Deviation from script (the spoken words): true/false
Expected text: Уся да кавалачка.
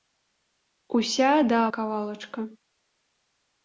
false